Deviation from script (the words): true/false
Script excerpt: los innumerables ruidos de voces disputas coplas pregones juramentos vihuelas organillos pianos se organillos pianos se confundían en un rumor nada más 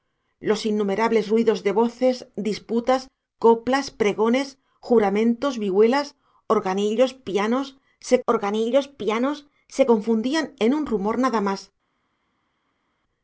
false